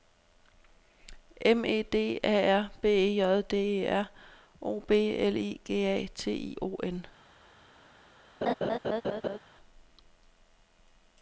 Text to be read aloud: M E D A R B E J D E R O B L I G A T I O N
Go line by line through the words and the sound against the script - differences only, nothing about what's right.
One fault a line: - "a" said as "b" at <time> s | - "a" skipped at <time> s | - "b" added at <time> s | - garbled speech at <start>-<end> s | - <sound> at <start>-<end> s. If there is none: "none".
- laugh at 8.4-9.4 s